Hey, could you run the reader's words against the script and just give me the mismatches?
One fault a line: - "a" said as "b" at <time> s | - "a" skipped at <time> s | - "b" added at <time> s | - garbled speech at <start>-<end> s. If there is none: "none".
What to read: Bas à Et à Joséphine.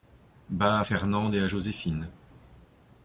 - "Fernande" added at 0.8 s